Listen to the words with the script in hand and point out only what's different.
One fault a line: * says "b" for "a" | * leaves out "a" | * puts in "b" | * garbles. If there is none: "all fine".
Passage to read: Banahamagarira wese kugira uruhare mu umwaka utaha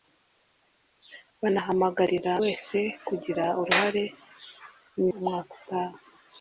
all fine